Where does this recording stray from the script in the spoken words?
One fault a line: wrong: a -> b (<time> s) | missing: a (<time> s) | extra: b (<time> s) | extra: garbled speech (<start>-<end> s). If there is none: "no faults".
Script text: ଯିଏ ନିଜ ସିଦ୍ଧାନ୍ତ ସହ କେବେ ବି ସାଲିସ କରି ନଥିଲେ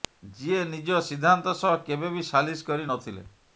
no faults